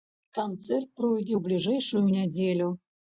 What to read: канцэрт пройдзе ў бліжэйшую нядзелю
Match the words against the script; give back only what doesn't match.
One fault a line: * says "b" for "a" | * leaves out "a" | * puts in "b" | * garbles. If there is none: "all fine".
all fine